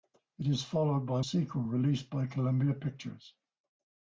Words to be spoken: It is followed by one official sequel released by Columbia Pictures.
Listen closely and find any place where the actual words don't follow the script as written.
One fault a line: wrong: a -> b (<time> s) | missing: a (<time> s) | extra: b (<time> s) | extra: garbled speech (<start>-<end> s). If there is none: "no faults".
missing: one official (1.2 s)